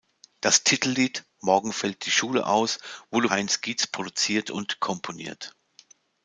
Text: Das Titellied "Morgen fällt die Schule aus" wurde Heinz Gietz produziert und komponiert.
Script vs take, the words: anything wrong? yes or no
no